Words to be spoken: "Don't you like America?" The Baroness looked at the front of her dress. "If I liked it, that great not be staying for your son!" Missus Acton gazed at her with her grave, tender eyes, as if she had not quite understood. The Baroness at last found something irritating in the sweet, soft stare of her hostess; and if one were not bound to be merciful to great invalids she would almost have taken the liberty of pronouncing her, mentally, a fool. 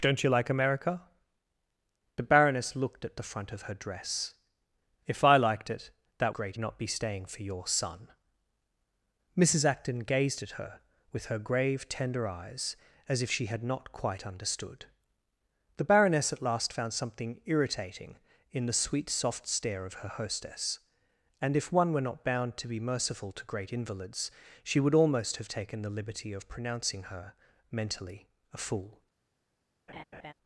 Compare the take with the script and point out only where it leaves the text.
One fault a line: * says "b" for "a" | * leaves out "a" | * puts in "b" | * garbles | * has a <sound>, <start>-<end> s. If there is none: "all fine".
* has a laugh, 29.9-30.3 s